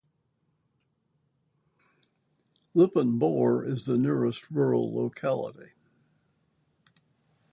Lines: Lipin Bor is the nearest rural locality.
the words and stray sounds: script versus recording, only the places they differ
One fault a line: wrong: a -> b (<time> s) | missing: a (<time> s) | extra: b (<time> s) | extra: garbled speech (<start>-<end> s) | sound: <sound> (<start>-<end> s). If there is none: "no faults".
no faults